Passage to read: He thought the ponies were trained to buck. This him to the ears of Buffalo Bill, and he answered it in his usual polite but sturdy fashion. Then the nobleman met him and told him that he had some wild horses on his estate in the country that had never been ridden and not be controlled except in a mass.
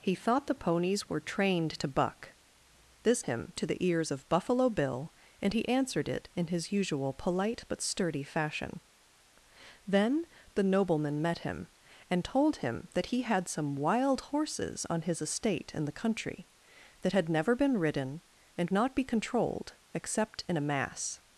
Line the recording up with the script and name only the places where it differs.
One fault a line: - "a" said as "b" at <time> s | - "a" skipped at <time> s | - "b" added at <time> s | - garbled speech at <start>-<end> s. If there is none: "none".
none